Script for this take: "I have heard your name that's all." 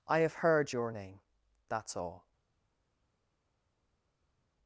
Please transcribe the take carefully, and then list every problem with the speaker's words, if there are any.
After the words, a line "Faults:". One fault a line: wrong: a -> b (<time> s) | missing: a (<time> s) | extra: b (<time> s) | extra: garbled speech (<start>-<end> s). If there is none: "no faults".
"I have heard your name that's all."
Faults:
no faults